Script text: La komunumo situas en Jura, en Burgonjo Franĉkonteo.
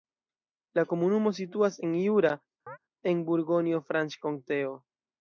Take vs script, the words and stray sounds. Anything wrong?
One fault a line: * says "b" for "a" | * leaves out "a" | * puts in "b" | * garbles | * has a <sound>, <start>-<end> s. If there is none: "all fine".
* has a chirp, 2.7-2.8 s